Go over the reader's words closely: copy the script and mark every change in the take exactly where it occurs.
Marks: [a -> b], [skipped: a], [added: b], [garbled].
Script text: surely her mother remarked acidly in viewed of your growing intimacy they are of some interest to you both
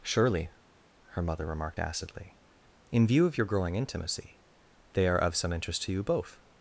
surely her mother remarked acidly in [viewed -> view] of your growing intimacy they are of some interest to you both